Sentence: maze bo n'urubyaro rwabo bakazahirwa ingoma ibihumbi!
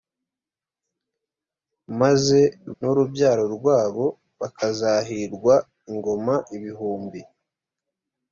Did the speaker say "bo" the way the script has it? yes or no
no